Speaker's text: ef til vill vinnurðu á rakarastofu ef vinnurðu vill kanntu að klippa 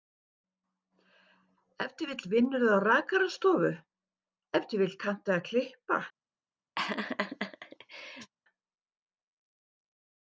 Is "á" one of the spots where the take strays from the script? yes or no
no